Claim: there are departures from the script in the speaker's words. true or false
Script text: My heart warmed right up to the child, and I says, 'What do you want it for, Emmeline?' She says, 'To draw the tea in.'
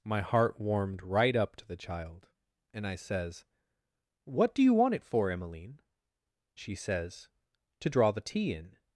false